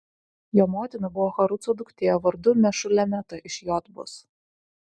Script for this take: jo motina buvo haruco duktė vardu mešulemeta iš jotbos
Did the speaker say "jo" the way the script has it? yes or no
yes